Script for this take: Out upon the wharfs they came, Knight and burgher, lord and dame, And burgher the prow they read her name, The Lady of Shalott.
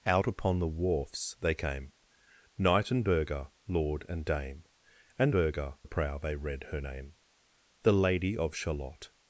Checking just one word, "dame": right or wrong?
right